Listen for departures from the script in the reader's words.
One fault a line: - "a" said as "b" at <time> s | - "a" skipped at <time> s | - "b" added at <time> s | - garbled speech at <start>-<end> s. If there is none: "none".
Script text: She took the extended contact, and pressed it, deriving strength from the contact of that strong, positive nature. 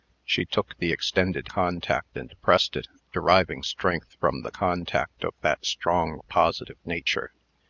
none